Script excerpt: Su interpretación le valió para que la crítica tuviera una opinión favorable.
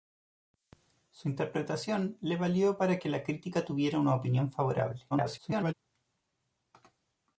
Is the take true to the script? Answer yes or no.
no